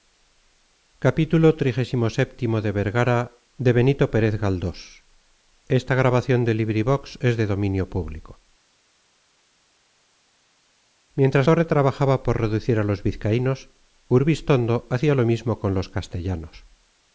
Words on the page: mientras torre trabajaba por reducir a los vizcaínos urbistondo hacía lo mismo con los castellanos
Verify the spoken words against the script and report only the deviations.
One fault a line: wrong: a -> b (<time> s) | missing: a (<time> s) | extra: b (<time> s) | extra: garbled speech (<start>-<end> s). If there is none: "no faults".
no faults